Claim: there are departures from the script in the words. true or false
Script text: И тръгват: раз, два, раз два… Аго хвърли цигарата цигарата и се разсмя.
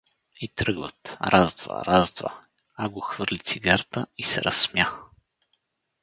true